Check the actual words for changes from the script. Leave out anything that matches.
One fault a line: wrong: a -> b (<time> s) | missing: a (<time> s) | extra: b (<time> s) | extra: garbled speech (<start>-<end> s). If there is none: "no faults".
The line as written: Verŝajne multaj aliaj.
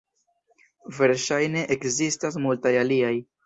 extra: ekzistas (1.8 s)